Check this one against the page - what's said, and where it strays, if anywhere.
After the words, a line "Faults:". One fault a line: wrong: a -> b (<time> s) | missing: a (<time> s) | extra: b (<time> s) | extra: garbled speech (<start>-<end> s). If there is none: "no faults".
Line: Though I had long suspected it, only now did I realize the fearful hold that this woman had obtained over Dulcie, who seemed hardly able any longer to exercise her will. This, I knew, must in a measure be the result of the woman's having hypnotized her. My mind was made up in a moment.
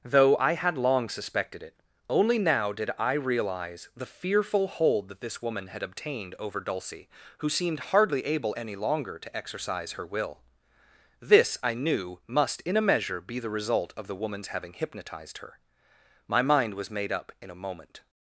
Though I had long suspected it, only now did I realize the fearful hold that this woman had obtained over Dulcie, who seemed hardly able any longer to exercise her will. This, I knew, must in a measure be the result of the woman's having hypnotized her. My mind was made up in a moment.
Faults:
no faults